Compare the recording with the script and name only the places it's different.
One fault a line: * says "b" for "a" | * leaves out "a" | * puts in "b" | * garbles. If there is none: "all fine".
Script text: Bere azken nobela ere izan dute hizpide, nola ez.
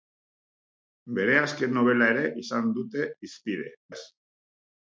* leaves out "nola"